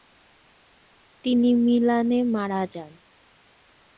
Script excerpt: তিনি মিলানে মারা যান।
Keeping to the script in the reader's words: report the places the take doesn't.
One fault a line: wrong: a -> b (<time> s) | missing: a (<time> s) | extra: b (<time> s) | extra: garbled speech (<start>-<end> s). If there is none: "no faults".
no faults